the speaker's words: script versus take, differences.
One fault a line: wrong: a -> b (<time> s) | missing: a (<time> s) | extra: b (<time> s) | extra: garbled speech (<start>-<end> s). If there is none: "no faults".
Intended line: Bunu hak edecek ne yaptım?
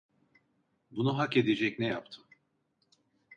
no faults